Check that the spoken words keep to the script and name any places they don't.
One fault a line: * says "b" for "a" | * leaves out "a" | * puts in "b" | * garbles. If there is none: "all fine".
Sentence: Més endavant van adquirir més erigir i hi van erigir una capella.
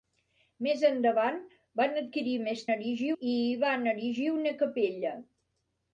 all fine